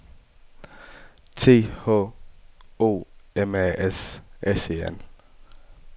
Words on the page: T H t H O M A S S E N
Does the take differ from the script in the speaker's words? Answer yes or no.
yes